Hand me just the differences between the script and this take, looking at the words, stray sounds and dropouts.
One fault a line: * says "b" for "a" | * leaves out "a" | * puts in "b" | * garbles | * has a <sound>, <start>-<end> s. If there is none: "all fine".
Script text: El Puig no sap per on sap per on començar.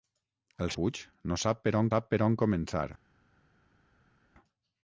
all fine